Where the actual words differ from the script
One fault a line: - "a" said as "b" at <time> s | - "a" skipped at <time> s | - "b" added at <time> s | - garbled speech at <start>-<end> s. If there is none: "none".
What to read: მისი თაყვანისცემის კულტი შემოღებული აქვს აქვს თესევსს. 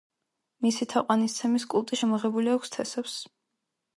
- "აქვს" skipped at 2.7 s